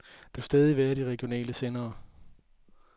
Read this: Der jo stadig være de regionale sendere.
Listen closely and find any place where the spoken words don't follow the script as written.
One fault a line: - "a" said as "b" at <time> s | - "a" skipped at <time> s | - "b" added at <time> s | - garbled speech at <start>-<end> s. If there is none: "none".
none